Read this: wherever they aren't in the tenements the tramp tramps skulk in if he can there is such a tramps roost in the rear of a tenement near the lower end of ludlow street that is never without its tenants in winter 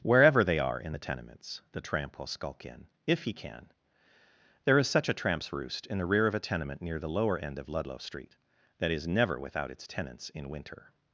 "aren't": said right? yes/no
no